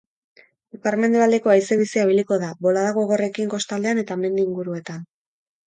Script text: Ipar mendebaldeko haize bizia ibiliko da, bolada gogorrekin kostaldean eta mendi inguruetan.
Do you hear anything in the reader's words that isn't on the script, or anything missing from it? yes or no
no